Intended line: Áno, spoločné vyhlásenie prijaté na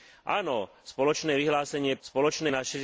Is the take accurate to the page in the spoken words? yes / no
no